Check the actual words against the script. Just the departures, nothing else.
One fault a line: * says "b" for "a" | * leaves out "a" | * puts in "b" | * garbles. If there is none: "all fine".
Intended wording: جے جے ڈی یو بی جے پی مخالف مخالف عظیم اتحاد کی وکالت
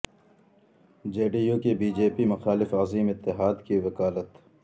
* leaves out "جے"
* puts in "کی"
* leaves out "مخالف"